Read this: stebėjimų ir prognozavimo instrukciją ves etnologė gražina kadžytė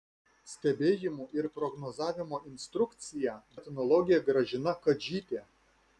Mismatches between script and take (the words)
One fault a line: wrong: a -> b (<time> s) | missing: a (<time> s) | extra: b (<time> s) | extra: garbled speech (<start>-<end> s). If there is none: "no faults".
missing: ves (3.4 s)